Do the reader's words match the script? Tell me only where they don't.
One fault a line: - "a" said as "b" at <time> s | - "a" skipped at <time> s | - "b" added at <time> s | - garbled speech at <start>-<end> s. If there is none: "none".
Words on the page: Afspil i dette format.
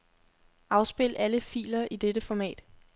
- "alle filer" added at 1.1 s